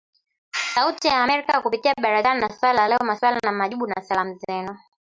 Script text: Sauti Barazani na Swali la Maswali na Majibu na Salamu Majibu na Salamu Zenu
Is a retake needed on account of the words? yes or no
yes